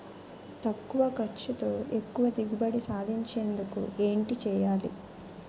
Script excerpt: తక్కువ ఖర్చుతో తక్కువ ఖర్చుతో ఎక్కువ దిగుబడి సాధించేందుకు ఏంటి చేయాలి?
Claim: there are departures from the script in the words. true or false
true